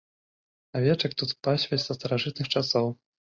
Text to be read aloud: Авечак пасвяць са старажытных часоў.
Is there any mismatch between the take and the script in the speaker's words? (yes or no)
yes